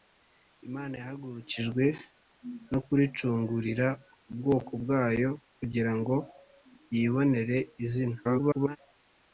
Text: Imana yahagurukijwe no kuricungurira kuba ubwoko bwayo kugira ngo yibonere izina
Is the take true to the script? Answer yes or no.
no